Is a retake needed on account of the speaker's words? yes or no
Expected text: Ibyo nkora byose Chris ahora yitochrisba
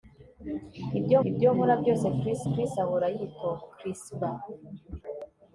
yes